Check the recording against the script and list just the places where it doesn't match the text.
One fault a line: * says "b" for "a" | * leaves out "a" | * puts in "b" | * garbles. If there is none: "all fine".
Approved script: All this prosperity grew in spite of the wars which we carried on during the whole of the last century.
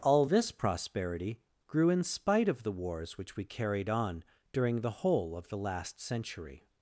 all fine